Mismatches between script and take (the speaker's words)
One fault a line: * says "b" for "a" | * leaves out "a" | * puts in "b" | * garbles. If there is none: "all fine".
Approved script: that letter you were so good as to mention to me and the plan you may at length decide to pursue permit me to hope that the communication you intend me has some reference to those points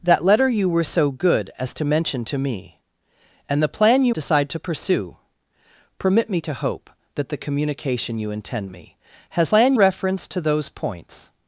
* leaves out "may at length"
* says "plan" for "some"